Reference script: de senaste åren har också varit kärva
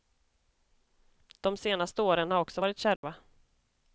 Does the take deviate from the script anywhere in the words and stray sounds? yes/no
yes